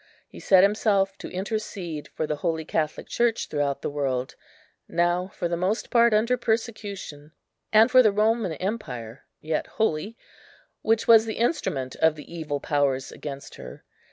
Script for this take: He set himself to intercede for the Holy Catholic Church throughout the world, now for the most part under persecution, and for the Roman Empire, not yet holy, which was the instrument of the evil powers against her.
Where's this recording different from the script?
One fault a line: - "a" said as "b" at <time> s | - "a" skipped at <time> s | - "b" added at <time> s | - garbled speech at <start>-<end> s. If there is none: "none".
- "not" skipped at 9.2 s